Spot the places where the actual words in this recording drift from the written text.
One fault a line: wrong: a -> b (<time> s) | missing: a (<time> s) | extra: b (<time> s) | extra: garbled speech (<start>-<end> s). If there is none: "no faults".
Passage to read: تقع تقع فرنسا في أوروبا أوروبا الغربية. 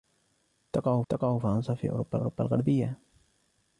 no faults